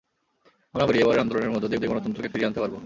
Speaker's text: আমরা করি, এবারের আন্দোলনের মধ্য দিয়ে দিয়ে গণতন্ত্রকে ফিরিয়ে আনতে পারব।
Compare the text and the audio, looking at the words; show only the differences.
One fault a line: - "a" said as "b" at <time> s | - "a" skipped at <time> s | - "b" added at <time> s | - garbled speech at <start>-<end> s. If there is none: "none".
none